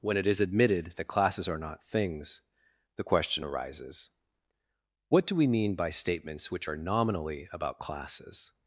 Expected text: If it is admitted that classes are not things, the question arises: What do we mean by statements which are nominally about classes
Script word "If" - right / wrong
wrong